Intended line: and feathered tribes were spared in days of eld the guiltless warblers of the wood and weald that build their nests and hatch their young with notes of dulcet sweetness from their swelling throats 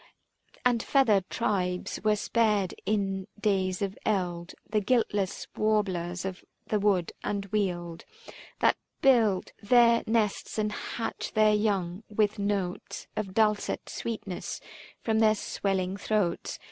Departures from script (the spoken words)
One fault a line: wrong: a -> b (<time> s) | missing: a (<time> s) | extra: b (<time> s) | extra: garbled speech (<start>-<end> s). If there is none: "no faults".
no faults